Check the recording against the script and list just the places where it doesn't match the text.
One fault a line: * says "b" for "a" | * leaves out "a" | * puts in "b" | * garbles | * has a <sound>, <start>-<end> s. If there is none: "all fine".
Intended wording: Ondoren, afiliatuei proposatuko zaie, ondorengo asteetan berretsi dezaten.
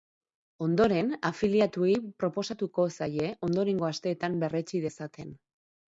all fine